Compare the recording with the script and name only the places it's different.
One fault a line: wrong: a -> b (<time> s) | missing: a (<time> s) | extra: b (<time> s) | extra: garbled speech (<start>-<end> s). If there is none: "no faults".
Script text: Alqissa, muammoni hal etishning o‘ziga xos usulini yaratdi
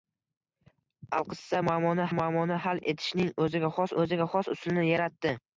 extra: muammoni (2.2 s)
extra: o‘ziga xos (4.0 s)